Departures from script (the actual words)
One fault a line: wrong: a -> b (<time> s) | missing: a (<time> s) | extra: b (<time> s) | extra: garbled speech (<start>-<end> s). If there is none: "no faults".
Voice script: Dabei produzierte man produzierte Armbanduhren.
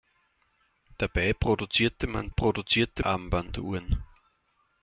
no faults